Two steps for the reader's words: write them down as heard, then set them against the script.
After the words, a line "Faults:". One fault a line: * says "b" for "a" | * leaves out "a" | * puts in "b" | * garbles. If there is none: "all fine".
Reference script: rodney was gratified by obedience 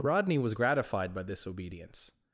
rodney was gratified by this obedience
Faults:
* puts in "this"